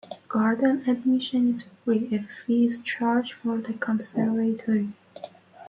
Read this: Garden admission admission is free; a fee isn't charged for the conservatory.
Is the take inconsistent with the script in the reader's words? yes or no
yes